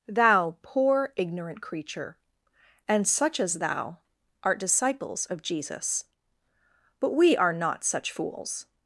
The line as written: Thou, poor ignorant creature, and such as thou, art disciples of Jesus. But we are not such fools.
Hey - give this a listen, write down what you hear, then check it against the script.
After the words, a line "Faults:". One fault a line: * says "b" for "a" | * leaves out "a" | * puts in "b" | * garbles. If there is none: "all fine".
Thou, poor ignorant creature, and such as thou, art disciples of Jesus. But we are not such fools.
Faults:
all fine